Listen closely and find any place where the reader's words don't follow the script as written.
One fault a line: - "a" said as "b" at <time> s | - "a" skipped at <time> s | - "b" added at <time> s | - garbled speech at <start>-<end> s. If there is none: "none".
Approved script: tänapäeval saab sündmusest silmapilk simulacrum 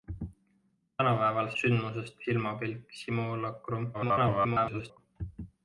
- "saab" skipped at 1.5 s
- garbled speech at 3.9-5.0 s